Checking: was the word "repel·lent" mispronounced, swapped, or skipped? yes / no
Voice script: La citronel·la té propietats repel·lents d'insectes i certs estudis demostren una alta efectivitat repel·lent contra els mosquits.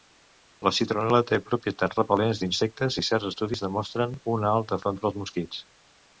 yes